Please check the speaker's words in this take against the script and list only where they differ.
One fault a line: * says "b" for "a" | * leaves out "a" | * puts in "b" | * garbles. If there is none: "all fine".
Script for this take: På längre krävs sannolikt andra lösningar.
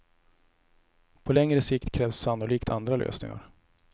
* puts in "sikt"